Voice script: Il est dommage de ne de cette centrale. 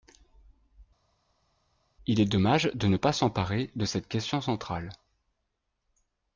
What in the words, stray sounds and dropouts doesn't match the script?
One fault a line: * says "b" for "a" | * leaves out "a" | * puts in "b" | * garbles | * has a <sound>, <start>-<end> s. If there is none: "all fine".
* puts in "pas s'emparer"
* puts in "question"